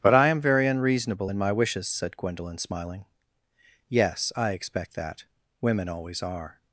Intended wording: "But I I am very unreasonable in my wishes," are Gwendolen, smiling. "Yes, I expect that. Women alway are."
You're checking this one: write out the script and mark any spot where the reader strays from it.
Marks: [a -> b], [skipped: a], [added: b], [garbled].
"But I [skipped: I] am very unreasonable in my wishes," [are -> said] Gwendolen, smiling. "Yes, I expect that. Women [alway -> always] are."